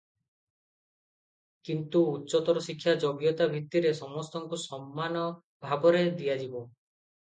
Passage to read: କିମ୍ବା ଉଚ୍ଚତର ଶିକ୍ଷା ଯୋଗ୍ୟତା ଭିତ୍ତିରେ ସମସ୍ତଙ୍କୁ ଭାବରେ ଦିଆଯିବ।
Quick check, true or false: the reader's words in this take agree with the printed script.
false